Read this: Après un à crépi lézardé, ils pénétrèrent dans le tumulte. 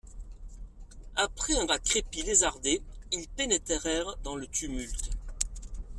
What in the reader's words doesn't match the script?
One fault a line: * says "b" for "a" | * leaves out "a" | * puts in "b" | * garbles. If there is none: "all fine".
all fine